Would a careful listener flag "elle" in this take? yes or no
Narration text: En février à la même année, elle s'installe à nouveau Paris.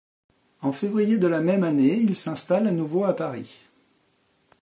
yes